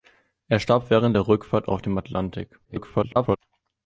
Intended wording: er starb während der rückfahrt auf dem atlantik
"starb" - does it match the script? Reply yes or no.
yes